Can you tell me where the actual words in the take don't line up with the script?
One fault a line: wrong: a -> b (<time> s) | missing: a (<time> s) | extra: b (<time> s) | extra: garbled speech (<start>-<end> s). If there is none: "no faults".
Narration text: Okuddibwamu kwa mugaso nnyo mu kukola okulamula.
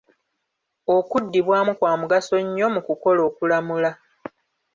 no faults